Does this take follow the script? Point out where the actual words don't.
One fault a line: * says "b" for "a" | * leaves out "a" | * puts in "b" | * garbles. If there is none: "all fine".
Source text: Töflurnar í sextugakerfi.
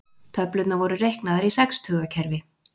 * puts in "voru reiknaðar"